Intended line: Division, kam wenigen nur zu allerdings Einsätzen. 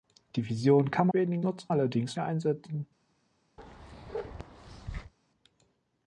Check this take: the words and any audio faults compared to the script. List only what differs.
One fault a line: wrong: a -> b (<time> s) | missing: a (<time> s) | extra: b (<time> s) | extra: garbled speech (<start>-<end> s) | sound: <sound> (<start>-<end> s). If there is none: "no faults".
sound: bark (3.6-5.1 s)